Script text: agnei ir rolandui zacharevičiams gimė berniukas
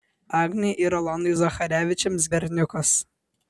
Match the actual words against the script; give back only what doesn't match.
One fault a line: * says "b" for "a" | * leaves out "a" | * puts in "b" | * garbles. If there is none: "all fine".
* leaves out "gimė"